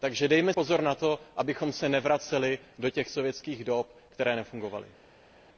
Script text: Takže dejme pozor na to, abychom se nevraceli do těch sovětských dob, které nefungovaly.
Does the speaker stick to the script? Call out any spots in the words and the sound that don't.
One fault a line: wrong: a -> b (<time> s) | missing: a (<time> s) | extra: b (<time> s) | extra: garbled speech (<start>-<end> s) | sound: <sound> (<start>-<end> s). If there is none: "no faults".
no faults